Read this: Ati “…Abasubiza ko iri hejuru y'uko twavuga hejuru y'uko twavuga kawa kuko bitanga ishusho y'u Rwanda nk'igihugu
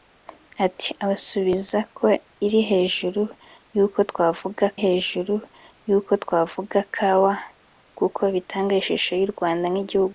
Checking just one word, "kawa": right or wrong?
right